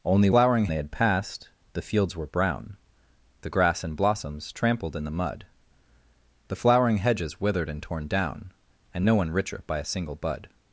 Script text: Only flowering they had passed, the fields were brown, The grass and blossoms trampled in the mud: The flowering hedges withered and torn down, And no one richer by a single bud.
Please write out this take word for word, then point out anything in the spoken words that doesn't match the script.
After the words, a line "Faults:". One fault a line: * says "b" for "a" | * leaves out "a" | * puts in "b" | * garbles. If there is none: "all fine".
Only flowering they had passed, the fields were brown, The grass and blossoms trampled in the mud: The flowering hedges withered and torn down, And no one richer by a single bud.
Faults:
all fine